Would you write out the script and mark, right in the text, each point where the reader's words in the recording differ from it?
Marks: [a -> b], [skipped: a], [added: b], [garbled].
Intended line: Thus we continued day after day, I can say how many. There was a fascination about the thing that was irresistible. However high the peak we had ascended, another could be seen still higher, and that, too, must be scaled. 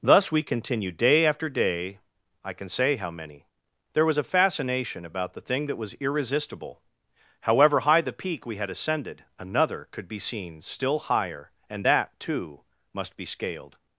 Thus we continued day after day, I can say how many. There was a fascination about the thing that was irresistible. However high the peak we had ascended, another could be seen still higher, and that, too, must be scaled.